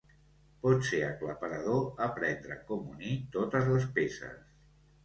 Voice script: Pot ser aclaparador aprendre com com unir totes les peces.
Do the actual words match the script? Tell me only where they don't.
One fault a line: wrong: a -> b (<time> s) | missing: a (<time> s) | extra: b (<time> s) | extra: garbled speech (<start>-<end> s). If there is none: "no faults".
missing: com (2.9 s)